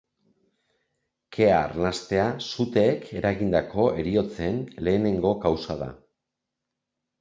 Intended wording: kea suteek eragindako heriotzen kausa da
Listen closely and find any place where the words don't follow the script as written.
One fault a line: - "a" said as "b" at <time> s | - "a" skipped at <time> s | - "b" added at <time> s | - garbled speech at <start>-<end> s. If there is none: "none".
- "arnastea" added at 1.6 s
- "lehenengo" added at 4.9 s